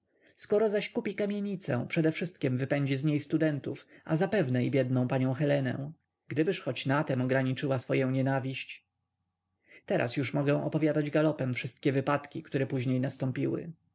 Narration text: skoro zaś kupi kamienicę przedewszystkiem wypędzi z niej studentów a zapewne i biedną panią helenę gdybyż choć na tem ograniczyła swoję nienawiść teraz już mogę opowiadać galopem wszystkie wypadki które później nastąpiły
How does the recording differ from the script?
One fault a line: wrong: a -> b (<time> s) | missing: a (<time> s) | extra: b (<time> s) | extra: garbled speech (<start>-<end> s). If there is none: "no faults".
no faults